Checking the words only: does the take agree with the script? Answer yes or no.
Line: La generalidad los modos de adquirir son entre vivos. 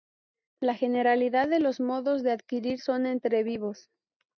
no